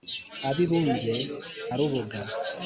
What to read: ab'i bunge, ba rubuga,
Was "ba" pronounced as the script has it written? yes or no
no